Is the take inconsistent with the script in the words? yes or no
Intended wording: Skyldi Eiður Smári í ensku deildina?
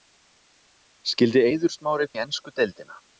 no